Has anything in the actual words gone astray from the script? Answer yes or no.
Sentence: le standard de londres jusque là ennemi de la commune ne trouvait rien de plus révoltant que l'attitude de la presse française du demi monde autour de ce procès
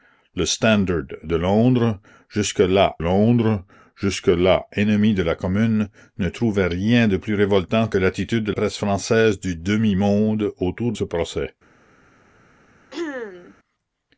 yes